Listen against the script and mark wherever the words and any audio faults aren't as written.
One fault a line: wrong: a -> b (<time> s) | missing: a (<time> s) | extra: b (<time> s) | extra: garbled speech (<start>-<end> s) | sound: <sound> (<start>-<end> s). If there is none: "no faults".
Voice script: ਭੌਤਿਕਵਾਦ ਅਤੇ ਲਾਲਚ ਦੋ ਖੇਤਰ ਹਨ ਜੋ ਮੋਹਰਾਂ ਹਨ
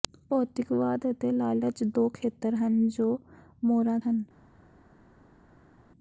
no faults